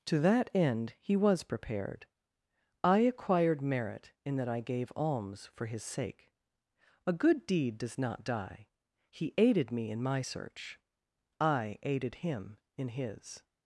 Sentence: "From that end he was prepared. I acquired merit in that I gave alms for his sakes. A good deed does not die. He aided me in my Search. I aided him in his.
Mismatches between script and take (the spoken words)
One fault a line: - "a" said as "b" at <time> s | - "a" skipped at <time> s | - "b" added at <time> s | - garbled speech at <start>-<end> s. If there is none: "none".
- "From" said as "To" at 0.1 s
- "sakes" said as "sake" at 5.8 s